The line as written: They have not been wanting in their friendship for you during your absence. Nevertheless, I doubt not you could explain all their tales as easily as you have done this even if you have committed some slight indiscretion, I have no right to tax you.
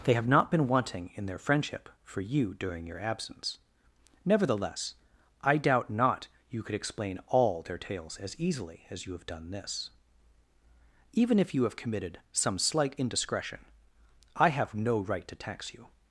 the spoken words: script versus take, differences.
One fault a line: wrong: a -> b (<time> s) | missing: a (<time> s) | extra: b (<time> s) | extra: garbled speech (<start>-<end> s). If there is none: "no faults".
no faults